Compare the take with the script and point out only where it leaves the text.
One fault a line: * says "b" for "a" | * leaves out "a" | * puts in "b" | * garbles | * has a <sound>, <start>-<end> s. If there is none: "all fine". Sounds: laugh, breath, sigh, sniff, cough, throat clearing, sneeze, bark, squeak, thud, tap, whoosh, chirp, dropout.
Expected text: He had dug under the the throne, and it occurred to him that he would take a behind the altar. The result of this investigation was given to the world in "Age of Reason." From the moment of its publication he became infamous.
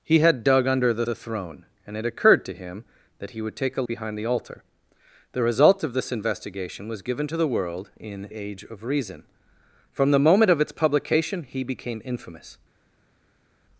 all fine